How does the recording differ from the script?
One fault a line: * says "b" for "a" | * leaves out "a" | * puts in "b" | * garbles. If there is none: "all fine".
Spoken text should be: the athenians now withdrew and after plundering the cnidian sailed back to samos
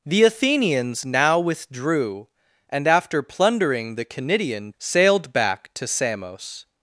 all fine